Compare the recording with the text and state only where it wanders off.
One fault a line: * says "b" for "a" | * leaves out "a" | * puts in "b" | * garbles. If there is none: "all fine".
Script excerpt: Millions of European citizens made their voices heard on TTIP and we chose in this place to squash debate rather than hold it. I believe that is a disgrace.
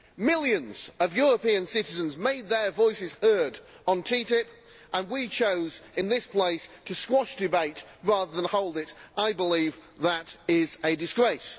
all fine